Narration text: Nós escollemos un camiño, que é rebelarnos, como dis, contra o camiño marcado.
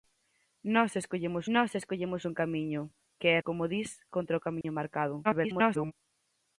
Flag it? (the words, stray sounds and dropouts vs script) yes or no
yes